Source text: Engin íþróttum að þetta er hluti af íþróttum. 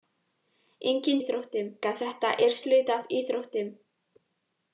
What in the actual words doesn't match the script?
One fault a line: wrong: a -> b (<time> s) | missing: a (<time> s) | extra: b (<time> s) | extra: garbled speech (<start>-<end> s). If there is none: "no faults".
no faults